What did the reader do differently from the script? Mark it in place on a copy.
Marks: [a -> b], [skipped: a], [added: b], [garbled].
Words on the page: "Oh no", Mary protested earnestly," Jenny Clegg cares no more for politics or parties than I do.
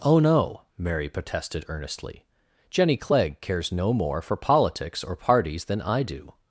"Oh no", Mary protested earnestly," Jenny Clegg cares no more for politics or parties than I do.